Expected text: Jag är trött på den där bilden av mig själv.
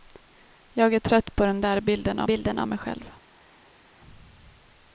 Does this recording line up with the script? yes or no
no